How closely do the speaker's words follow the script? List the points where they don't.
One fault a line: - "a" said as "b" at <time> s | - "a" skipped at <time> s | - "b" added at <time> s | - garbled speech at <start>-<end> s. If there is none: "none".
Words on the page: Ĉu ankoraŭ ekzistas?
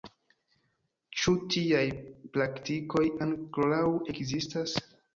- "tiaj praktikoj" added at 1.6 s